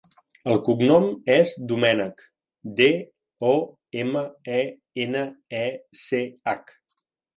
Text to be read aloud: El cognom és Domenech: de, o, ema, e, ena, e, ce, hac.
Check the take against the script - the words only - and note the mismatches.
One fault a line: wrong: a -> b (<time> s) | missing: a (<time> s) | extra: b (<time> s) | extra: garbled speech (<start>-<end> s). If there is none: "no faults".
no faults